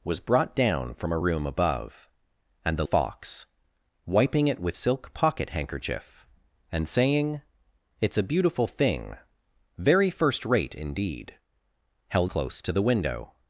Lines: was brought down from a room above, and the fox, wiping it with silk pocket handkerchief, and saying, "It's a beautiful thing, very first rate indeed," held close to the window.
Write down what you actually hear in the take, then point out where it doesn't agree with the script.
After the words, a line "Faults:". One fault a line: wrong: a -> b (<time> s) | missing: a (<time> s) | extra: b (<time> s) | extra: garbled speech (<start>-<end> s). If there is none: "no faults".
was brought down from a room above, and the fox, wiping it with silk pocket handkerchief, and saying, "It's a beautiful thing, very first rate indeed," held close to the window.
Faults:
no faults